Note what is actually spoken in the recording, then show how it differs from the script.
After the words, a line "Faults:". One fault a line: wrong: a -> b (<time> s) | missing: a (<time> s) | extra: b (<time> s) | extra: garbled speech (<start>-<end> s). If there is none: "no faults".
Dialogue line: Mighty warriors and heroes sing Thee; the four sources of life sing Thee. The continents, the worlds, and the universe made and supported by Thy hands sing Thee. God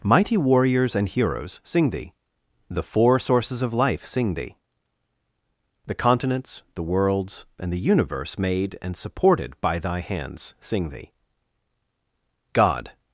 Mighty warriors and heroes sing Thee; the four sources of life sing Thee. The continents, the worlds, and the universe made and supported by Thy hands sing Thee. God
Faults:
no faults